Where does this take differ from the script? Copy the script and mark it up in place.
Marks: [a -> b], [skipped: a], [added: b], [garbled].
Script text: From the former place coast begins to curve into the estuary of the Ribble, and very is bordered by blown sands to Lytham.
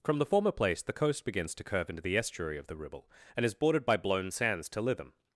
From the former place [added: the] coast begins to curve into the estuary of the Ribble, and [skipped: very] is bordered by blown sands to Lytham.